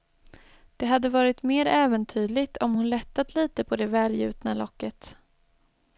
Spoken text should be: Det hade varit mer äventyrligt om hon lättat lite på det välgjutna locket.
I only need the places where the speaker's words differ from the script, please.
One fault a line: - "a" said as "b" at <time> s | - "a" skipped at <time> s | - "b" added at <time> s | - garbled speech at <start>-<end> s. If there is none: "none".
none